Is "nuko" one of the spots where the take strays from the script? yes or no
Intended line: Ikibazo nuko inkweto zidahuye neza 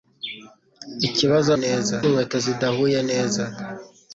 yes